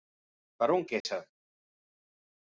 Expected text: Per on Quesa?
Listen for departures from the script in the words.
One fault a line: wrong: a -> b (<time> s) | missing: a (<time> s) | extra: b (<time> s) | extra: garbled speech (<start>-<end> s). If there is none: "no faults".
no faults